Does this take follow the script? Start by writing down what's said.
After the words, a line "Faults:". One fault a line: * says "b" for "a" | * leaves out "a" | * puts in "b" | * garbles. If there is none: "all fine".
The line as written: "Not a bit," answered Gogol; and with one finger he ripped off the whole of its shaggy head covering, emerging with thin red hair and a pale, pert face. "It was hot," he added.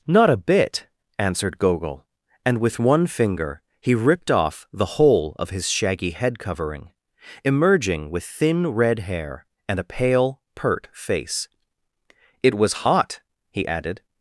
"Not a bit," answered Gogol; and with one finger he ripped off the whole of his shaggy head covering, emerging with thin red hair and a pale, pert face. "It was hot," he added.
Faults:
* says "his" for "its"